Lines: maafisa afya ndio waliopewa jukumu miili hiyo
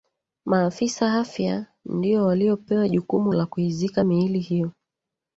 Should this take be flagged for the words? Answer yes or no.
yes